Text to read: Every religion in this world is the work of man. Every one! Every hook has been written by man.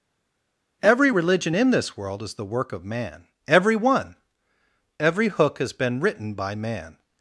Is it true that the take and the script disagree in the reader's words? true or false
false